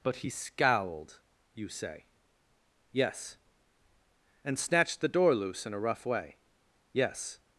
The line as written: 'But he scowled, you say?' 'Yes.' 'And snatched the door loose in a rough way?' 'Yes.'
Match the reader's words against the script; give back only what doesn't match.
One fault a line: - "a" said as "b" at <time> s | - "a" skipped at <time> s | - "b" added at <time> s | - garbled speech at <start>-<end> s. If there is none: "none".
none